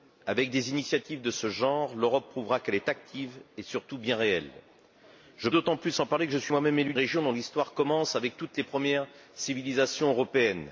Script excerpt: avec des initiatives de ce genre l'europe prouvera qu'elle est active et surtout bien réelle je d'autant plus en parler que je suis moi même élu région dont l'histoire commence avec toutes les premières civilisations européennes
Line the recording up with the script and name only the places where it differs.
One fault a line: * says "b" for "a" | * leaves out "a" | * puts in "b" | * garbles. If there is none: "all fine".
all fine